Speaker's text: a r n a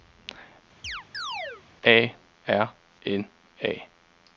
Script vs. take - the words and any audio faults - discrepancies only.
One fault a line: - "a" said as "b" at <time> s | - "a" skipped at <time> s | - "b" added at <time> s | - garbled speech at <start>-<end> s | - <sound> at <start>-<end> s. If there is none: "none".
- chirp at 0.8-1.6 s